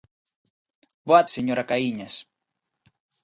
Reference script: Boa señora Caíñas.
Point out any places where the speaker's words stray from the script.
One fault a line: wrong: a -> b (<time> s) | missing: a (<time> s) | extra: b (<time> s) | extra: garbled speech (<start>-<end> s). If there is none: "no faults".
no faults